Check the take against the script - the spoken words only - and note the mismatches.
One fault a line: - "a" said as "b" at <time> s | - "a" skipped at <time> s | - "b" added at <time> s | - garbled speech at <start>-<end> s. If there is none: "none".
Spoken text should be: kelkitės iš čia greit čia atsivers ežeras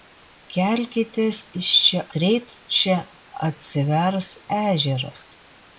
none